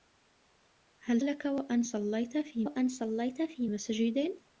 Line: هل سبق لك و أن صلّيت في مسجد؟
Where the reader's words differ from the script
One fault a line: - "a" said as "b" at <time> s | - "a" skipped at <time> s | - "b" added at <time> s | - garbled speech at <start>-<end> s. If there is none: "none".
- "سبق" skipped at 1.2 s
- "أن صلّيت في" added at 2.6 s